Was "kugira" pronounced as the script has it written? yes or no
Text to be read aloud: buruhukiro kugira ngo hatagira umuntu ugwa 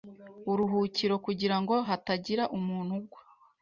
yes